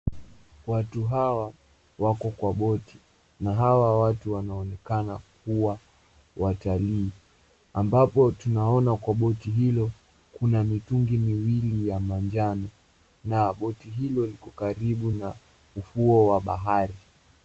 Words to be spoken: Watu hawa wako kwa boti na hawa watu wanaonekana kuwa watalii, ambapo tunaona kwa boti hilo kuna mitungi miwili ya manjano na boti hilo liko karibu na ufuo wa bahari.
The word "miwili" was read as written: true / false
true